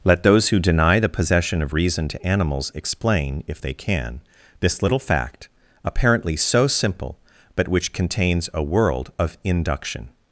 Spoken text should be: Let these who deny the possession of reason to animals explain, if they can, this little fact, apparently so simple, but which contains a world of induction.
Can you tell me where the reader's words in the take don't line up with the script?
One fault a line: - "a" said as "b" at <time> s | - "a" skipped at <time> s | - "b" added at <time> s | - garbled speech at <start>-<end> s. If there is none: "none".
- "these" said as "those" at 0.2 s